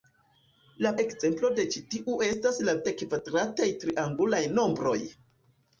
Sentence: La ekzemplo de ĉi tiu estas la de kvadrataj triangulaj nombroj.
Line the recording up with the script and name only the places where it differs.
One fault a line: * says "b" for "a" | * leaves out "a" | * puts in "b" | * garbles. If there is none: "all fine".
all fine